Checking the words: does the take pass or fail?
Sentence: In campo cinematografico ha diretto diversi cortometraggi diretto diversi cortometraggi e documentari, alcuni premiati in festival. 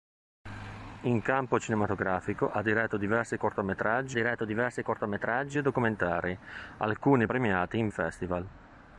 pass